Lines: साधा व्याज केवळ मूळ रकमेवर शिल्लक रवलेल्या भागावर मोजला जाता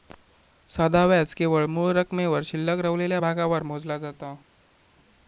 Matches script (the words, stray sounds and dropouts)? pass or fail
pass